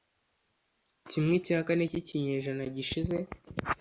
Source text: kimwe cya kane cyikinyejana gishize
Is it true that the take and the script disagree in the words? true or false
false